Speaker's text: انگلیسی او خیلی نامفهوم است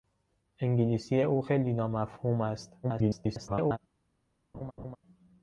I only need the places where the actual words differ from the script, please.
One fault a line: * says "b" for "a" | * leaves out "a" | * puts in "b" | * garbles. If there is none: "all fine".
* garbles